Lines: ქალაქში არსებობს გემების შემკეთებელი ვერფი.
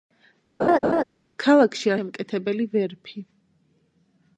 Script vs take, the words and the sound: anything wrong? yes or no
yes